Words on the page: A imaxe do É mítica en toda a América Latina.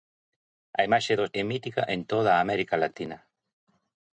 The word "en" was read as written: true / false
true